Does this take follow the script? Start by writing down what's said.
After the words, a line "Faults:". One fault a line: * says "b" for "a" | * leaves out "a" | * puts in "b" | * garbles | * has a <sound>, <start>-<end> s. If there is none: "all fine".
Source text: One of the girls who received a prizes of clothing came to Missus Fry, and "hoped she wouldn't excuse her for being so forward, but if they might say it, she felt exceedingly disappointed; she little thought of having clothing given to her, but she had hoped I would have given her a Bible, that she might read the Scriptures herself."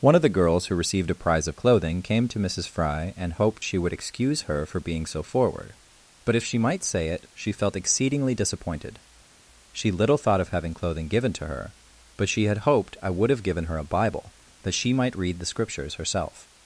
One of the girls who received a prize of clothing came to Missus Fry, and "hoped she would excuse her for being so forward, but if she might say it, she felt exceedingly disappointed; she little thought of having clothing given to her, but she had hoped I would have given her a Bible, that she might read the Scriptures herself."
Faults:
* says "prize" for "prizes"
* says "would" for "wouldn't"
* says "she" for "they"